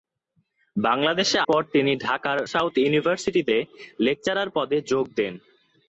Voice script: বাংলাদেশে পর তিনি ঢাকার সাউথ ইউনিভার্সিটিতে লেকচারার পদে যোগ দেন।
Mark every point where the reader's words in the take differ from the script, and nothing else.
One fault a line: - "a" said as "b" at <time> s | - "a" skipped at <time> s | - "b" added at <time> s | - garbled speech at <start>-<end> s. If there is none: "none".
none